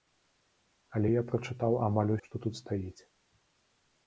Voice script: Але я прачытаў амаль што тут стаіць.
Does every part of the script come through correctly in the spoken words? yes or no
yes